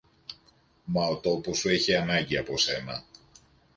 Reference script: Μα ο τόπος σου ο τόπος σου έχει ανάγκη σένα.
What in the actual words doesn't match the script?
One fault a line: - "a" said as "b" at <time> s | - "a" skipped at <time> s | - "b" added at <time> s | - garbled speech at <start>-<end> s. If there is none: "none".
- "ο τόπος σου" skipped at 1.7 s
- "από" added at 2.4 s